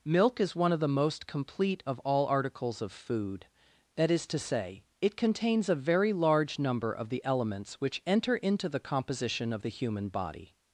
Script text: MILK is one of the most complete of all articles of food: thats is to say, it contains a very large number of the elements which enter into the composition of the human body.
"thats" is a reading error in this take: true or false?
true